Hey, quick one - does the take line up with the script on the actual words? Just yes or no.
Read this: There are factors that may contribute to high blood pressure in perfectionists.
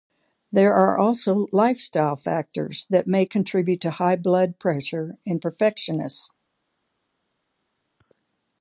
no